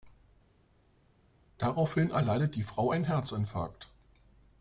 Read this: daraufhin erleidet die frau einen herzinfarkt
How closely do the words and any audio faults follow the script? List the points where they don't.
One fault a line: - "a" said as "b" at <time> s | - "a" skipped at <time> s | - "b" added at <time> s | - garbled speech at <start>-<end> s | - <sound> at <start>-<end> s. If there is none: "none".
none